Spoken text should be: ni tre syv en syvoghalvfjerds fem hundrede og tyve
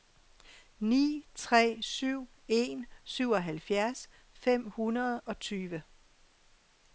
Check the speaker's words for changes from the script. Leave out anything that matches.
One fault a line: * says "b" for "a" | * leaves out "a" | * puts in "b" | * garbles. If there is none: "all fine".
all fine